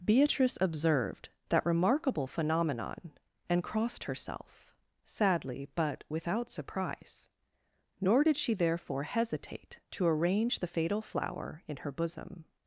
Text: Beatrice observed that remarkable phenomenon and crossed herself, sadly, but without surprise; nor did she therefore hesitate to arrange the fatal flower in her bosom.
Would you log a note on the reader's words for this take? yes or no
no